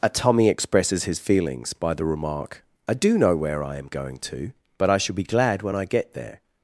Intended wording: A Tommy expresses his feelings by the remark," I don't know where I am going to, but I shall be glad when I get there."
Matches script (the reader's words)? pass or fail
fail